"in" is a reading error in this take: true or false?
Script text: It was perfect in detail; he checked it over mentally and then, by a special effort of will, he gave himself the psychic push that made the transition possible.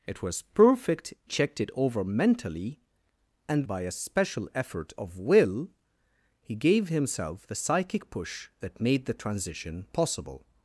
true